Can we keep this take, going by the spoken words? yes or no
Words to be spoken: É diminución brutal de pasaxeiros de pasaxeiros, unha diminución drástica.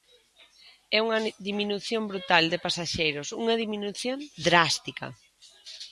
no